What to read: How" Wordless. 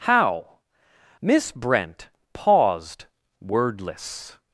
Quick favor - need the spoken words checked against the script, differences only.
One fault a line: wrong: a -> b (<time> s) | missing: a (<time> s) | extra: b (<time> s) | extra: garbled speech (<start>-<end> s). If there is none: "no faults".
extra: Miss Brent paused (1.2 s)